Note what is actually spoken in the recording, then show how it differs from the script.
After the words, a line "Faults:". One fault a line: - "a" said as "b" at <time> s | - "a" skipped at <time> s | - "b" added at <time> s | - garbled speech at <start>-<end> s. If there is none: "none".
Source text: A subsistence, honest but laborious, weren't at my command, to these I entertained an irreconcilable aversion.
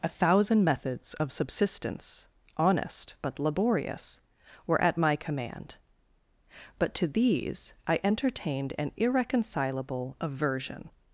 A thousand methods of subsistence, honest but laborious, were at my command, but to these I entertained an irreconcilable aversion.
Faults:
- "thousand methods of" added at 0.1 s
- "weren't" said as "were" at 4.7 s
- "but" added at 6.8 s